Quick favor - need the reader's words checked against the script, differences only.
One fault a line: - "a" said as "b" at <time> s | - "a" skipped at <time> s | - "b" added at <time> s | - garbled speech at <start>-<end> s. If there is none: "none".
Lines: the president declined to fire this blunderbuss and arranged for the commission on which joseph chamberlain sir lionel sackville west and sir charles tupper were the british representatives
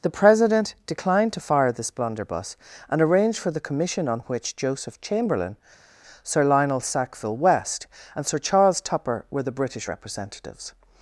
none